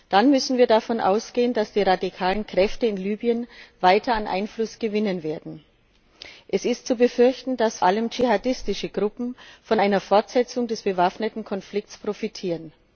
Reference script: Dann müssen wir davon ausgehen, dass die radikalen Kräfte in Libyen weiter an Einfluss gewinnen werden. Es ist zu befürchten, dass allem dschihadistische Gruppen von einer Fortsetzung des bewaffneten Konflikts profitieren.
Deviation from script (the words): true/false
false